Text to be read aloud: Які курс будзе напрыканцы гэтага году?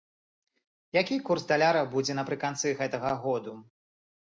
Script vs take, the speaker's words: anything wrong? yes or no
yes